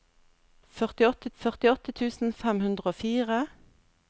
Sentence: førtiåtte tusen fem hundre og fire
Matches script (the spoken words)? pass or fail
fail